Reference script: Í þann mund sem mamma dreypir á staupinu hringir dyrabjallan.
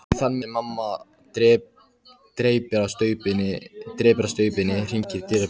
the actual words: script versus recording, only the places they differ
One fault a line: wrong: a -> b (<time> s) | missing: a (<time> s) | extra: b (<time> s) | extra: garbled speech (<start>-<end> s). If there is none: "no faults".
missing: mund (0.4 s)